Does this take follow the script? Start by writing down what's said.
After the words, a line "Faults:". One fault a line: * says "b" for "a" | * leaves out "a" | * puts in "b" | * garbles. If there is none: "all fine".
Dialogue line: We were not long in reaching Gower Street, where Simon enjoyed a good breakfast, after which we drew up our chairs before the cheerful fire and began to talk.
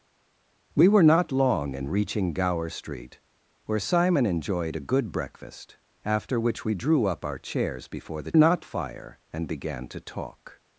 We were not long in reaching Gower Street, where Simon enjoyed a good breakfast, after which we drew up our chairs before the not fire and began to talk.
Faults:
* says "not" for "cheerful"